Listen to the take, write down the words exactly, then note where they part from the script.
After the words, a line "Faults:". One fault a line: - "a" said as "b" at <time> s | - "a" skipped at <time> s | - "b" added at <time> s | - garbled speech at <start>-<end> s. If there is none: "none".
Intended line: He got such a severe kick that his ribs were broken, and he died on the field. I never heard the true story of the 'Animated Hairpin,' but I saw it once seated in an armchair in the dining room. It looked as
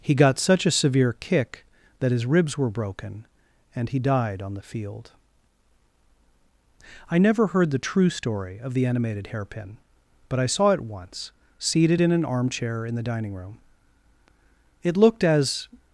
He got such a severe kick that his ribs were broken, and he died on the field. I never heard the true story of the 'Animated Hairpin,' but I saw it once seated in an armchair in the dining room. It looked as
Faults:
none